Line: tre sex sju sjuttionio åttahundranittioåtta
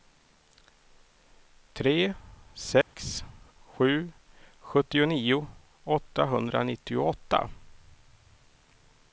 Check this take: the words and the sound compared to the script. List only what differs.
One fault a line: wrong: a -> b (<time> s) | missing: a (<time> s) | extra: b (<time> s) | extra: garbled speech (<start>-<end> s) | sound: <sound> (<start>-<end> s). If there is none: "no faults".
sound: dropout (2.8-2.9 s)